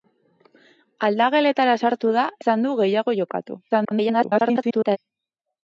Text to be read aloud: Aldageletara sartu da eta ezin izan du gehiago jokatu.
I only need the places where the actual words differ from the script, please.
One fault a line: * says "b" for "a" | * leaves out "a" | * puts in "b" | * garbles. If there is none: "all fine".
* leaves out "eta ezin"
* garbles